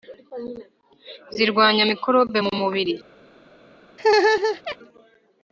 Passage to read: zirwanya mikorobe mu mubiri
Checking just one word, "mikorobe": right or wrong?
right